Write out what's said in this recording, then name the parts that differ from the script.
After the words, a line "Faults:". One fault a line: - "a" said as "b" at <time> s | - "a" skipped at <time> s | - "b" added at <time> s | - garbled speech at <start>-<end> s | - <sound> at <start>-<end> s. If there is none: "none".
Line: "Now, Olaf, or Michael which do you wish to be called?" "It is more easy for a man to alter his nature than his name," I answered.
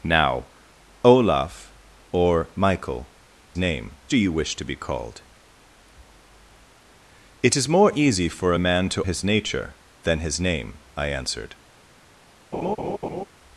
"Now, Olaf, or Michael name do you wish to be called?" "It is more easy for a man to his nature than his name," I answered.
Faults:
- "which" said as "name" at 3.6 s
- "alter" skipped at 9.0 s
- laugh at 12.5-13.2 s